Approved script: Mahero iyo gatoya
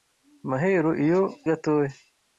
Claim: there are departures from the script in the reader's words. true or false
false